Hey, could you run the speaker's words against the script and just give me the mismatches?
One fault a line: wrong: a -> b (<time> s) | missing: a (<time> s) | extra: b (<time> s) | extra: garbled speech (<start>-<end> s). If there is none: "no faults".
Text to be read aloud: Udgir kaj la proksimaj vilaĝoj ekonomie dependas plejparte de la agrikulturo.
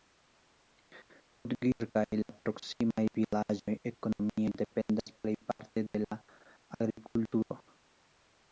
no faults